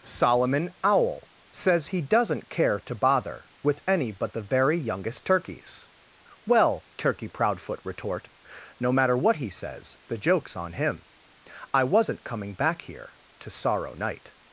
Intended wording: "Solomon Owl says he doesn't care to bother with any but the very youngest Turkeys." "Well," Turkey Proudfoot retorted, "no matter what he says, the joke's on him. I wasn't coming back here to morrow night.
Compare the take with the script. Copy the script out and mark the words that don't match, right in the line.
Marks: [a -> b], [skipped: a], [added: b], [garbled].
"Solomon Owl says he doesn't care to bother with any but the very youngest Turkeys." "Well," Turkey Proudfoot [retorted, -> retort] "no matter what he says, the joke's on him. I wasn't coming back here to [morrow -> sorrow] night.